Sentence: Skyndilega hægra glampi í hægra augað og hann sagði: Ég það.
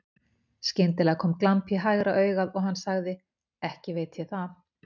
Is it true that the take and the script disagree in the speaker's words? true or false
true